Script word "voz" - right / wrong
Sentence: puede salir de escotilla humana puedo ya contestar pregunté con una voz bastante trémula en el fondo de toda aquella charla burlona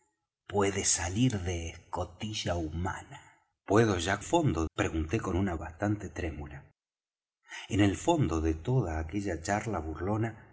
wrong